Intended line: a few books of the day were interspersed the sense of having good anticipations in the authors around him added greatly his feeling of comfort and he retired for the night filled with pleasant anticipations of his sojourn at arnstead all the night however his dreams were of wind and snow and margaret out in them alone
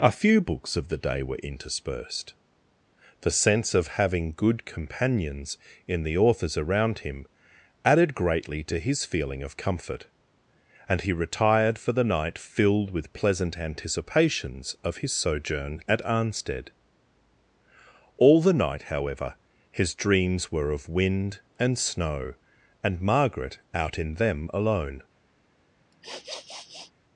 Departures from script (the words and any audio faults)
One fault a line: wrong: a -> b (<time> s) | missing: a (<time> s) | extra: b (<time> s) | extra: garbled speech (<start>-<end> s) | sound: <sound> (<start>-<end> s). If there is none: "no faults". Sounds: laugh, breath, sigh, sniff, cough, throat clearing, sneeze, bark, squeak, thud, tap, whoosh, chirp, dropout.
wrong: anticipations -> companions (4.7 s)
extra: to (8.6 s)
sound: sniff (25.9-26.9 s)